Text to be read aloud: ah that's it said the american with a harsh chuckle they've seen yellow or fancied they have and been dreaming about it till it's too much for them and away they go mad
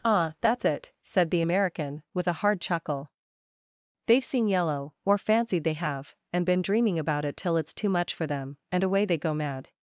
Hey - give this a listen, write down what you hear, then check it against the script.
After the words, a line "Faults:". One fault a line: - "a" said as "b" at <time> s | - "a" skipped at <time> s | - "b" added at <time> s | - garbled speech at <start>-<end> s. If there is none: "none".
ah that's it said the american with a hard chuckle they've seen yellow or fancied they have and been dreaming about it till it's too much for them and away they go mad
Faults:
- "harsh" said as "hard" at 2.3 s